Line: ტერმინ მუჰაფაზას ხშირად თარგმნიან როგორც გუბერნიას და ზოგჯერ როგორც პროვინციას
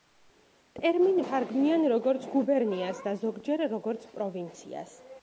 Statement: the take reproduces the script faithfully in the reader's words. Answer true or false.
false